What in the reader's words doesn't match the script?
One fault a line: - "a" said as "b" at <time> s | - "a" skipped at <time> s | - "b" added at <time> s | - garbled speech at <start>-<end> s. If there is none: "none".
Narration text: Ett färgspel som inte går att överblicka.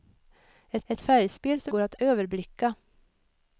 - "ett" added at 0.9 s
- "inte" skipped at 1.7 s